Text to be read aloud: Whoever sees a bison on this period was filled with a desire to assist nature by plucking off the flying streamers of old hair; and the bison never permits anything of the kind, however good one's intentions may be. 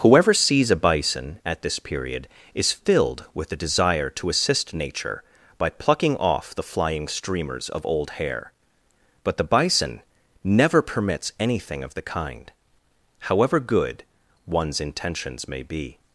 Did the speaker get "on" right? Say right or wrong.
wrong